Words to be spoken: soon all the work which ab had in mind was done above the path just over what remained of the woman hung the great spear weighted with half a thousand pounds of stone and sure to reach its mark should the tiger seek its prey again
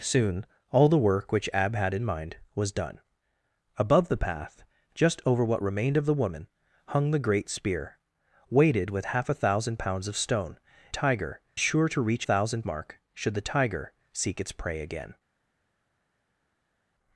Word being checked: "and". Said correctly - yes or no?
no